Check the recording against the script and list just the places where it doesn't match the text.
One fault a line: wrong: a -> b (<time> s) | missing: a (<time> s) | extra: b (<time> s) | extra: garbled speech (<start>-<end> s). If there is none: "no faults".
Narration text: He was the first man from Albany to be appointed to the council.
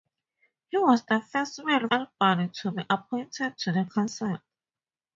missing: from (1.9 s)